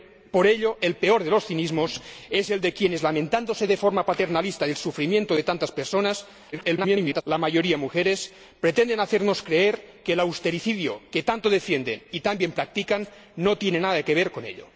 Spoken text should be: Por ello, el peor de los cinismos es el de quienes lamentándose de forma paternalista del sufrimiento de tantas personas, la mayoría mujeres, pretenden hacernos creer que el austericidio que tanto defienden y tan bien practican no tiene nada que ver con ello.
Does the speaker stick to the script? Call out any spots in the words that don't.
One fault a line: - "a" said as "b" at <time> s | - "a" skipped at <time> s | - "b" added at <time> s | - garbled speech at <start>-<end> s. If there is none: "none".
- garbled speech at 6.5-7.2 s